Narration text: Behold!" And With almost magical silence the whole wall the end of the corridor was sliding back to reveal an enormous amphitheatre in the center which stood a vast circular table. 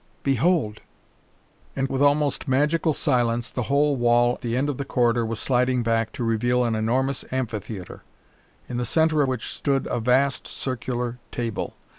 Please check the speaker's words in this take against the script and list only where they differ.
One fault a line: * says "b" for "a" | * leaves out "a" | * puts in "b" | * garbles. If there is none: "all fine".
all fine